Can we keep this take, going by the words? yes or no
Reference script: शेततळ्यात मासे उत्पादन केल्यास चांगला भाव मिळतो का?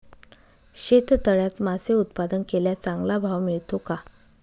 yes